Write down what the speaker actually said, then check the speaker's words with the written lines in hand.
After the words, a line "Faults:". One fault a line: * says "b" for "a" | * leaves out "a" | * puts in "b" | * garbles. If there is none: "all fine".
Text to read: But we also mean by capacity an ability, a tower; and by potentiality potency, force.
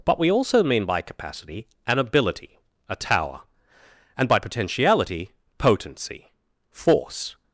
But we also mean by capacity an ability, a tower; and by potentiality potency, force.
Faults:
all fine